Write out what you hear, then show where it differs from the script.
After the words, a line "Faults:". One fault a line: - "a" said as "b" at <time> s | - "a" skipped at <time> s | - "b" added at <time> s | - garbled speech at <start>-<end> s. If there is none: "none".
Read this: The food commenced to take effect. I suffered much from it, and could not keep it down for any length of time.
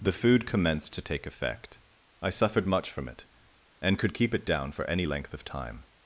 The food commenced to take effect. I suffered much from it, and could keep it down for any length of time.
Faults:
- "not" skipped at 4.1 s